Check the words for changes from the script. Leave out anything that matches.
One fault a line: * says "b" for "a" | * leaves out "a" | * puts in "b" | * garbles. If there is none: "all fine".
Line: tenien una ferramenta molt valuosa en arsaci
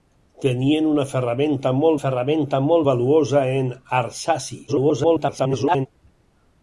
* puts in "ferramenta molt"
* garbles